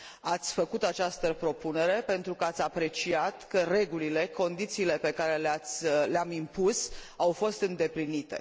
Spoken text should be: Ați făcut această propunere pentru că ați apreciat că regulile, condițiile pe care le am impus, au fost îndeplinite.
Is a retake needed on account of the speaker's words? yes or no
no